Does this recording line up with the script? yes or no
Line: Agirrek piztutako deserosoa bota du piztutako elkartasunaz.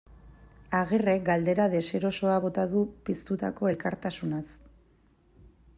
no